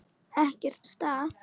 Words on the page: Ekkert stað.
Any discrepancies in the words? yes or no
no